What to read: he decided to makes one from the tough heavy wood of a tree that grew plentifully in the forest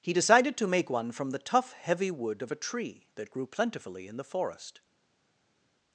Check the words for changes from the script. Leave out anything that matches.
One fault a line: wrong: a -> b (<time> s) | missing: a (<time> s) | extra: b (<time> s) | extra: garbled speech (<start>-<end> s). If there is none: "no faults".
wrong: makes -> make (0.7 s)